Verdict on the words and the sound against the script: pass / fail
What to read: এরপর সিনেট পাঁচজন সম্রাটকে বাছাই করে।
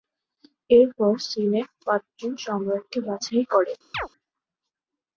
fail